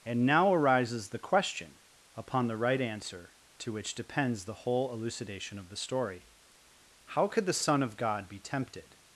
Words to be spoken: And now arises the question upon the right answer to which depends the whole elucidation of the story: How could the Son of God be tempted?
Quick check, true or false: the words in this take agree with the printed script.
true